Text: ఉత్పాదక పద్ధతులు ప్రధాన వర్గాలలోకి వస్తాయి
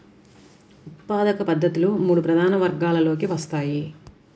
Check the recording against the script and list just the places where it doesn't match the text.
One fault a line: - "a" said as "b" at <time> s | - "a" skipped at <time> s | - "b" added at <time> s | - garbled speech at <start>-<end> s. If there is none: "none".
- "మూడు" added at 2.0 s